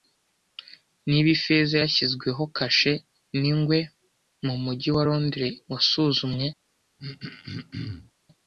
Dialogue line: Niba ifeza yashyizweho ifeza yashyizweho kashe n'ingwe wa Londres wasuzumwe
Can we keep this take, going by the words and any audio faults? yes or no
no